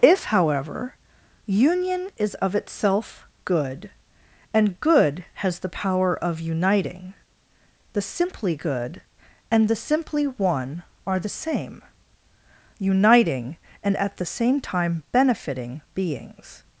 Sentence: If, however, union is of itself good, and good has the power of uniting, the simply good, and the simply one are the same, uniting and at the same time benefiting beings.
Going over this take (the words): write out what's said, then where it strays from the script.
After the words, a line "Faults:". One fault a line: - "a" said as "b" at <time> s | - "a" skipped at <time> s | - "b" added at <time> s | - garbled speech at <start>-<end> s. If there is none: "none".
If, however, union is of itself good, and good has the power of uniting, the simply good, and the simply one are the same, uniting and at the same time benefiting beings.
Faults:
none